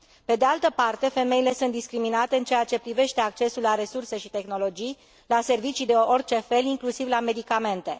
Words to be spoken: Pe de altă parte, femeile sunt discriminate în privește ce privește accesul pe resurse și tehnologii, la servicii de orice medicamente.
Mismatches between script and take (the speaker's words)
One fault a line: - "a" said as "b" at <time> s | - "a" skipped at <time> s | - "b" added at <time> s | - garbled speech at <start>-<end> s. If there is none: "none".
- "privește" said as "ceea" at 2.4 s
- "pe" said as "la" at 3.6 s
- "fel inclusiv la" added at 6.4 s